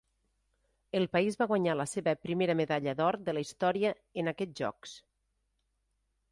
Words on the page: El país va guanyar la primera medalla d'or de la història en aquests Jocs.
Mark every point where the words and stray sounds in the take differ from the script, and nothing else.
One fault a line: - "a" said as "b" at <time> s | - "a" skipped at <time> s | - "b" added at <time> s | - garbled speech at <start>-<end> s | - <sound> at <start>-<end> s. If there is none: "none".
- "seva" added at 1.9 s